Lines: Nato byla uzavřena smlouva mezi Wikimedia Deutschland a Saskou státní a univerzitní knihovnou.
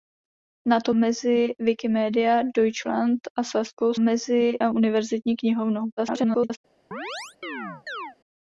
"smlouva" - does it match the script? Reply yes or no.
no